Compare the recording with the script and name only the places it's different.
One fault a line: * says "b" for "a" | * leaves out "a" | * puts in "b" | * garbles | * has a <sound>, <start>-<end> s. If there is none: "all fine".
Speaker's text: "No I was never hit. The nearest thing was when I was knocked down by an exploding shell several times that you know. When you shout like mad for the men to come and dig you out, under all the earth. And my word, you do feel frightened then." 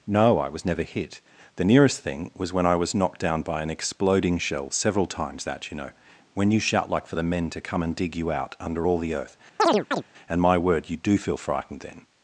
* leaves out "mad"
* has a chirp, 9.6-10.0 s